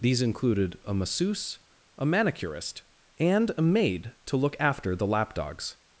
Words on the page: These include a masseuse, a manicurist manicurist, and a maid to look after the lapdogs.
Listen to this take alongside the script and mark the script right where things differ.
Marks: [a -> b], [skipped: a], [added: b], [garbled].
These [include -> included] a masseuse, a manicurist [skipped: manicurist,] and a maid to look after the lapdogs.